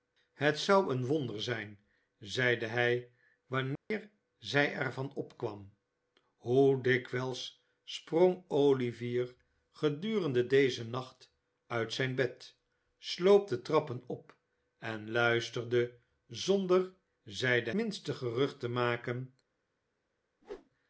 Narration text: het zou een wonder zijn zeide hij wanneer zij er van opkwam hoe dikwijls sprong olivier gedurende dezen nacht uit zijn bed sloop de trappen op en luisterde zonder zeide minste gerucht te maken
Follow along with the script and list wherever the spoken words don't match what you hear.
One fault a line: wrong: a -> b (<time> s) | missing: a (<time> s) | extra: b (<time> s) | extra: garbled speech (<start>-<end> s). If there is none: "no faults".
no faults